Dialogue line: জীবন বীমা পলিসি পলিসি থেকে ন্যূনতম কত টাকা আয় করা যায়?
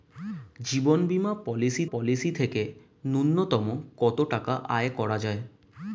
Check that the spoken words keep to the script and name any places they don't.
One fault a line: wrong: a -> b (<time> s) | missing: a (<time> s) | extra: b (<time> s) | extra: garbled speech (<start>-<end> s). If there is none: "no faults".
no faults